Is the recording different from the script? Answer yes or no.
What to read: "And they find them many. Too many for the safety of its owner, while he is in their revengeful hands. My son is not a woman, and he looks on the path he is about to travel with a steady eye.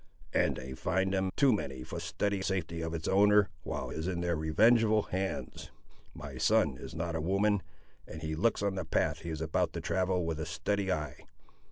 yes